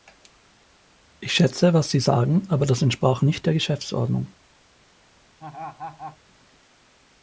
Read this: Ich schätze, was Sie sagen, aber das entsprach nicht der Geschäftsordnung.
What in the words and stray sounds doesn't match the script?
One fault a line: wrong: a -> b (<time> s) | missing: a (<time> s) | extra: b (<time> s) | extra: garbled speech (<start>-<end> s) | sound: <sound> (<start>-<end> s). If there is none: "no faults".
sound: laugh (5.4-6.2 s)